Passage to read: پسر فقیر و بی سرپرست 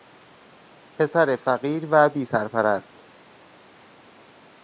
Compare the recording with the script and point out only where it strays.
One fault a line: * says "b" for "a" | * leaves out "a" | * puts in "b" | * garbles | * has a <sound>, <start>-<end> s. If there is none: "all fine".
all fine